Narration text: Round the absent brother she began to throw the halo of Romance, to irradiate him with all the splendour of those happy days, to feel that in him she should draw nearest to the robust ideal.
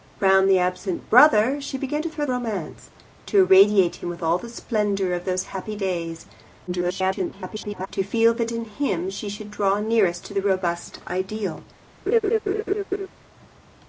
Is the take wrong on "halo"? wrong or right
wrong